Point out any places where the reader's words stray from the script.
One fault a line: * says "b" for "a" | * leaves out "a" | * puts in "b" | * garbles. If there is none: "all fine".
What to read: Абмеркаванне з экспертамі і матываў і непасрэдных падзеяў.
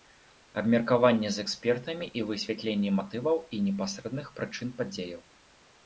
* puts in "высвятленне"
* puts in "прычын"